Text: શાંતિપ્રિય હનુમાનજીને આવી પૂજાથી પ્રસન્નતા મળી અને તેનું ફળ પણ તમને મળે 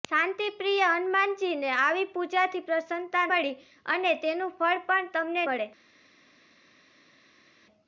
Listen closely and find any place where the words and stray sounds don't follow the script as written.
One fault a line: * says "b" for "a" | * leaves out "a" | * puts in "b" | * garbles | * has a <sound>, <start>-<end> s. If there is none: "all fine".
all fine